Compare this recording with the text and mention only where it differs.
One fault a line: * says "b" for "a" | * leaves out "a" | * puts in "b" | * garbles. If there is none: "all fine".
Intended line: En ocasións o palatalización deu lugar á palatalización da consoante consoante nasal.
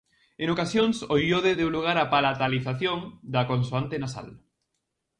* says "iode" for "palatalización"
* leaves out "consoante"